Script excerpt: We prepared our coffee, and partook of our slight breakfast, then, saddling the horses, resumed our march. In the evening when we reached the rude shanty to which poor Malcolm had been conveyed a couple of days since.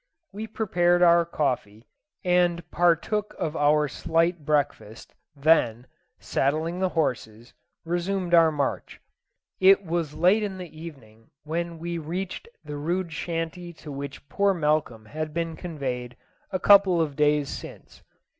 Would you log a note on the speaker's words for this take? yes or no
yes